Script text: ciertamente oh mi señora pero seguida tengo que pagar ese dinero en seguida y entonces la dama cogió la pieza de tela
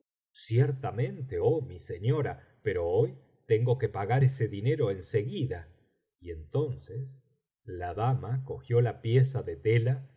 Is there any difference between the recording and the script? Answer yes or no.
yes